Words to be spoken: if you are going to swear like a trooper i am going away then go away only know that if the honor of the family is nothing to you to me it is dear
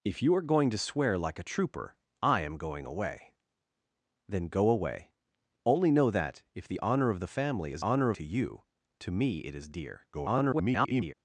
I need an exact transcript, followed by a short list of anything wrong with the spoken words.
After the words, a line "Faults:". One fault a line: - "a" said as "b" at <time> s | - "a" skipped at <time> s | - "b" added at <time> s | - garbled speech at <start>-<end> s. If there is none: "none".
if you are going to swear like a trooper i am going away then go away only know that if the honor of the family is honor to you to me it is dear [garbled]
Faults:
- "nothing" said as "honor" at 7.8 s
- garbled speech at 10.1-11.1 s